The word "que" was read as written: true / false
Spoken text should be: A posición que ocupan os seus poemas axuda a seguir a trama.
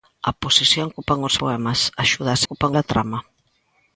false